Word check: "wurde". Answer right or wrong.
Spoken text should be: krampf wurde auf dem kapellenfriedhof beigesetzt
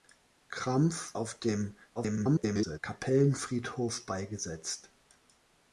wrong